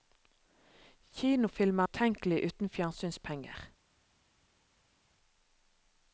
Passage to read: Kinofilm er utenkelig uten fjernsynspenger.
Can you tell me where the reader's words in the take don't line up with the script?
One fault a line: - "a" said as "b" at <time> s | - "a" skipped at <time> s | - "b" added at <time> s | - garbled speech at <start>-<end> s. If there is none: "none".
none